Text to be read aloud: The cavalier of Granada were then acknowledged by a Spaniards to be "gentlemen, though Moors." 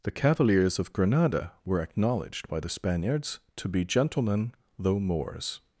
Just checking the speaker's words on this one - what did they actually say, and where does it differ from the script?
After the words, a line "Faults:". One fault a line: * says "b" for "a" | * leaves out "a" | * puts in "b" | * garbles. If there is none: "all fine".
The cavaliers of Granada were acknowledged by the Spaniards to be "gentlemen, though Moors."
Faults:
* says "cavaliers" for "cavalier"
* leaves out "then"
* says "the" for "a"